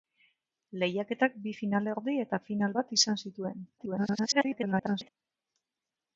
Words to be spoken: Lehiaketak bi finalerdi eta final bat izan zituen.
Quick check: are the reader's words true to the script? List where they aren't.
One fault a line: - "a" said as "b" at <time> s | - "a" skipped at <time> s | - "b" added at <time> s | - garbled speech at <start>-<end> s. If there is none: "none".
- garbled speech at 3.8-5.1 s